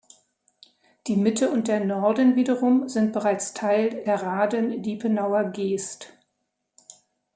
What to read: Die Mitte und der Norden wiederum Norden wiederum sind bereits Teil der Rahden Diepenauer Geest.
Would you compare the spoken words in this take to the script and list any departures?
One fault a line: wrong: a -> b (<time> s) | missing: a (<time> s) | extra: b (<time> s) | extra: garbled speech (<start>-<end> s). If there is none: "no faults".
missing: Norden wiederum (2.9 s)